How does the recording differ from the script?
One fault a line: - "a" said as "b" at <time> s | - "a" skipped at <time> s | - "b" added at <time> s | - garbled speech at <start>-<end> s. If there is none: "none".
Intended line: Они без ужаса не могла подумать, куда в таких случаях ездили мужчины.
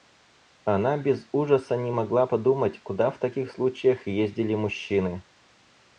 - "Они" said as "Она" at 0.7 s